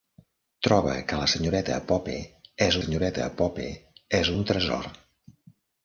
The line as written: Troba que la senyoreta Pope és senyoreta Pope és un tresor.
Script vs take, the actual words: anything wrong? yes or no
no